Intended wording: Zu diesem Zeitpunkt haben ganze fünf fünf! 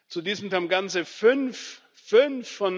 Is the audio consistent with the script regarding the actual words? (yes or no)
no